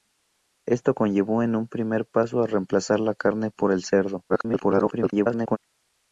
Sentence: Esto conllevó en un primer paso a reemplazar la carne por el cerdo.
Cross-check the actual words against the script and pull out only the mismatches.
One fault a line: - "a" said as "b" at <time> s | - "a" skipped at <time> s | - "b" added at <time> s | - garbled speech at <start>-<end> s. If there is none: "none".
- garbled speech at 4.3-5.6 s